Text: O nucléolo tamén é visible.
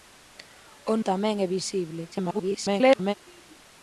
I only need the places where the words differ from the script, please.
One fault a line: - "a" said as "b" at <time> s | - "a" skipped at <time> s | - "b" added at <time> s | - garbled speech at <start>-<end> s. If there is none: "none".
- "nucléolo" skipped at 0.9 s
- garbled speech at 2.1-3.1 s